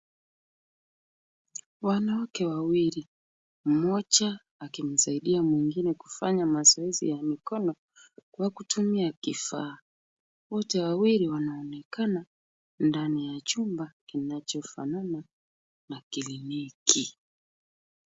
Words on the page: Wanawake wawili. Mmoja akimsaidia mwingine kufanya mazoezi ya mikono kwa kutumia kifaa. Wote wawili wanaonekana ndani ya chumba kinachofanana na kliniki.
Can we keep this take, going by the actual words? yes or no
yes